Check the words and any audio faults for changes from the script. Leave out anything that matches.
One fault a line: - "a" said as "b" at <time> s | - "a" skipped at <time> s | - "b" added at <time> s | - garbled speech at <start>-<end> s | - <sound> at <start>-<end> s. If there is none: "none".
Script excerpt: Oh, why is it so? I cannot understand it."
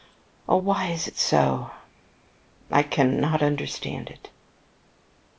none